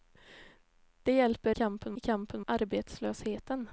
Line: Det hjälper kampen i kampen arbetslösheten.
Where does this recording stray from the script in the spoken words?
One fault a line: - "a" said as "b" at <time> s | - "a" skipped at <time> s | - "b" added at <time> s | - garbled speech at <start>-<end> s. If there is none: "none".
none